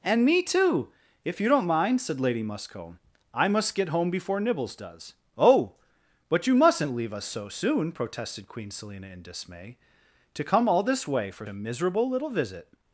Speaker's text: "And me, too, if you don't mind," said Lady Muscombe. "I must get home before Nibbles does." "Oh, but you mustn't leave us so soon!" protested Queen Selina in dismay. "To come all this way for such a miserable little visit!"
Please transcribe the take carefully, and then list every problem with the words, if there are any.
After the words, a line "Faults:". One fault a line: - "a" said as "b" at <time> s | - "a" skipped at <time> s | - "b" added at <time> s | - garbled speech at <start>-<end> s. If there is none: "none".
"And me, too, if you don't mind," said Lady Muscombe. "I must get home before Nibbles does." "Oh, but you mustn't leave us so soon!" protested Queen Selina in dismay. "To come all this way for a miserable little visit!"
Faults:
- "such" skipped at 11.4 s